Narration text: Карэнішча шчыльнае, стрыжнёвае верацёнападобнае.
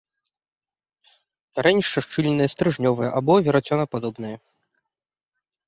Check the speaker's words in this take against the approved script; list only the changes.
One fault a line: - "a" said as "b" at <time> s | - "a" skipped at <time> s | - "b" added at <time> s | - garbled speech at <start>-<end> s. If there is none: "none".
- "або" added at 3.2 s